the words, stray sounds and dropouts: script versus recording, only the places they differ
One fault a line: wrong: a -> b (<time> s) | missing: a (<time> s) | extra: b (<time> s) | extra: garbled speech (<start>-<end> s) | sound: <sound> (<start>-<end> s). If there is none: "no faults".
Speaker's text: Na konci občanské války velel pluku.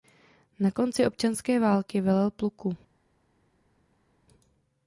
no faults